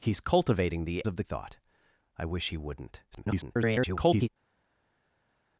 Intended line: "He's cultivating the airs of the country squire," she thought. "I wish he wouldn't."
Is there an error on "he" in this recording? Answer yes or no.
no